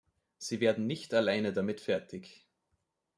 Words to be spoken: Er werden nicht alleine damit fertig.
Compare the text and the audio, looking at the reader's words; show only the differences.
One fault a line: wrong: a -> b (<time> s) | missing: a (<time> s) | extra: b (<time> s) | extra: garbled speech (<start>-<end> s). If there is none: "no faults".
wrong: Er -> Sie (0.4 s)